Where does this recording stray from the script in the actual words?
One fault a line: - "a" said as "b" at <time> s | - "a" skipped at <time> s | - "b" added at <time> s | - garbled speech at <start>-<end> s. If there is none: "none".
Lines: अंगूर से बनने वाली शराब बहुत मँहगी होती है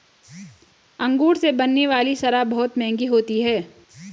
none